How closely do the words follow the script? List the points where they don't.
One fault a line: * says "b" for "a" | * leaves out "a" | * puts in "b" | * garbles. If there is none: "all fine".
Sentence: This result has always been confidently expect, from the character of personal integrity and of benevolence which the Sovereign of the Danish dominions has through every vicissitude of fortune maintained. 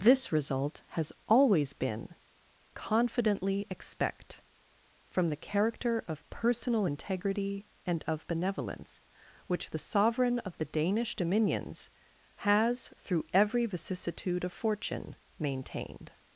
all fine